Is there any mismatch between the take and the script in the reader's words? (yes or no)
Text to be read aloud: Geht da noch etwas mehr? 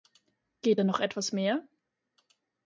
no